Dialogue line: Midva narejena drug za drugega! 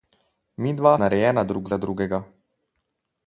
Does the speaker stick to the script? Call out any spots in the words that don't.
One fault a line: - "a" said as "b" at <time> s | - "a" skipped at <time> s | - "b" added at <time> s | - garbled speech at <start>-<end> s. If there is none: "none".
none